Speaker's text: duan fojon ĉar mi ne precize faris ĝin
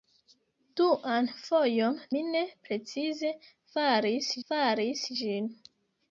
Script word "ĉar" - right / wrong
wrong